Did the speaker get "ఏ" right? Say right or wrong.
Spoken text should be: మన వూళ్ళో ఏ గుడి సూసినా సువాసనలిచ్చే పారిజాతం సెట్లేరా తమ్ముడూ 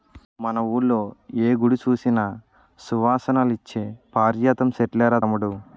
right